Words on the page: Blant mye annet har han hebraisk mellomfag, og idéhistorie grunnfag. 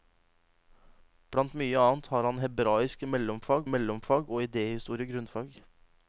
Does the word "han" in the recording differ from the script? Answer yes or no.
no